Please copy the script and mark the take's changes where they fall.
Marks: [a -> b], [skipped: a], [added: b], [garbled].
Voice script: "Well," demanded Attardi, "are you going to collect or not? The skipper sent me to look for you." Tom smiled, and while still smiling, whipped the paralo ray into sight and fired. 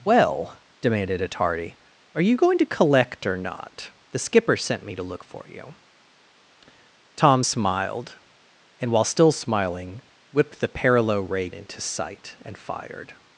"Well," demanded Attardi, "are you going to collect or not? The skipper sent me to look for you." Tom smiled, and while still smiling, whipped the paralo ray into sight and fired.